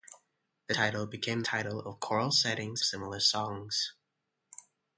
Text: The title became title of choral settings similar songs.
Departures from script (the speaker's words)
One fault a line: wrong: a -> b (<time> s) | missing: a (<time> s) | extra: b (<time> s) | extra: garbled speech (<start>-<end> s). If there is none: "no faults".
no faults